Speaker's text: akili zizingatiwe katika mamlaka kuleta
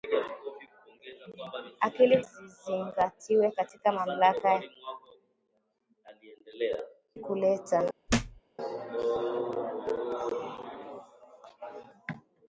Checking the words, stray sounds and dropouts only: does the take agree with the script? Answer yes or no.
no